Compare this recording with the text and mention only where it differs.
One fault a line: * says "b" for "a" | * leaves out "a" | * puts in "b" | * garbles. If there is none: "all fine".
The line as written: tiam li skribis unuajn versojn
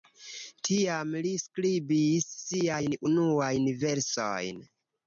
* puts in "siajn"